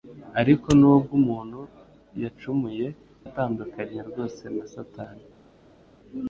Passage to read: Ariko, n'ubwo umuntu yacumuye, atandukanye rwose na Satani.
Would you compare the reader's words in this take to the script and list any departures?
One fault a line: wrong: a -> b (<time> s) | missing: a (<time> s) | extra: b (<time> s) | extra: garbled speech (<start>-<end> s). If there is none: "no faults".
no faults